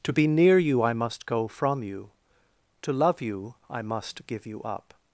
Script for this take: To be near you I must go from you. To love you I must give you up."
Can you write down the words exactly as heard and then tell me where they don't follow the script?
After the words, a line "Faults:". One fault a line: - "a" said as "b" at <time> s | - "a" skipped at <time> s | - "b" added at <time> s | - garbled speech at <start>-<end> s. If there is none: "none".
To be near you I must go from you. To love you I must give you up."
Faults:
none